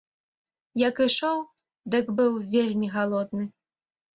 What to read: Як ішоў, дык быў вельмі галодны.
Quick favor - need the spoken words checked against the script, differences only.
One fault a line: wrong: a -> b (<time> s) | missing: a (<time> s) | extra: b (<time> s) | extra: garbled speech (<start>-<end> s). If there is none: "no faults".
no faults